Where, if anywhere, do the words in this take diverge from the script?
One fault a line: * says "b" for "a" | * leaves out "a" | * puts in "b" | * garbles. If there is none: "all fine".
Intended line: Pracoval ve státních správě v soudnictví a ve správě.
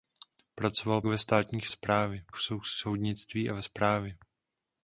all fine